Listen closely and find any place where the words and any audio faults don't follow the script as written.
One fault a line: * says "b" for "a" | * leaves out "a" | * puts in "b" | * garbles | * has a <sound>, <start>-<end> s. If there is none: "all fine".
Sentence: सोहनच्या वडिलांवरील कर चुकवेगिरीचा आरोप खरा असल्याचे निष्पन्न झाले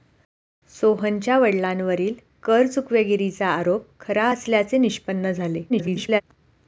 * garbles